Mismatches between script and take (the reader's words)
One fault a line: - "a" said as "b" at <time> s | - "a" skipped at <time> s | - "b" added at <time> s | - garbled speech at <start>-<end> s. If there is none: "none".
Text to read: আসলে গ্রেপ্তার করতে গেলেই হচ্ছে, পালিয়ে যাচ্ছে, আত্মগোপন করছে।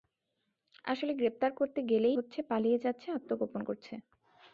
none